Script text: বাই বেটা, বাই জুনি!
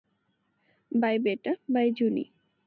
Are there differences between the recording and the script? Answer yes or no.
no